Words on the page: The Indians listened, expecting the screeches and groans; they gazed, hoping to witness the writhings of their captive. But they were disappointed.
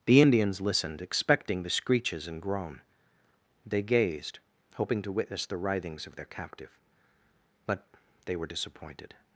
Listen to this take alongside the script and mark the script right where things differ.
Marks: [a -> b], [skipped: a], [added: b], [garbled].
The Indians listened, expecting the screeches and [groans; -> groan] they gazed, hoping to witness the writhings of their captive. But they were disappointed.